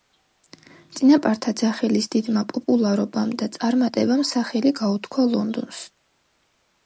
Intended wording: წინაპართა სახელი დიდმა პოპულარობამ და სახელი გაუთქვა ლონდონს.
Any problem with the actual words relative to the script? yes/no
yes